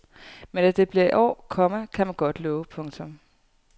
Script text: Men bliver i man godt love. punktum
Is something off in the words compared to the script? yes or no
yes